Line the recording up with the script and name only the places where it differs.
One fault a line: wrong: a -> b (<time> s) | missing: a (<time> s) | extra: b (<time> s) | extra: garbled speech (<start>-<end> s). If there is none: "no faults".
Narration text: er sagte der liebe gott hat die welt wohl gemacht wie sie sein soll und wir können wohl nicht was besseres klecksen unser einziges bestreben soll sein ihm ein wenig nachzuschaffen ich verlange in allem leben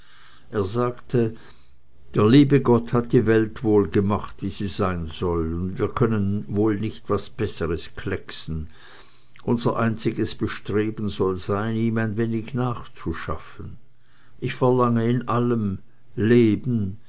no faults